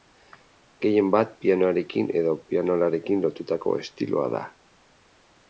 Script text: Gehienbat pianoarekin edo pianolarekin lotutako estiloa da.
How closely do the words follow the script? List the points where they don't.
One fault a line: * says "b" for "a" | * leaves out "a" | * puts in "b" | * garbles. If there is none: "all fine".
all fine